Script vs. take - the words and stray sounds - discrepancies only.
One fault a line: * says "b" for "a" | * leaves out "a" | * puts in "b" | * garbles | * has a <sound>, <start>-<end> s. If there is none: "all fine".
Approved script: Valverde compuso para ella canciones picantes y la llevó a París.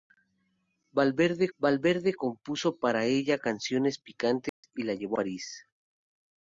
* puts in "valverde"
* has a dropout, 4.5-4.6 s
* leaves out "a"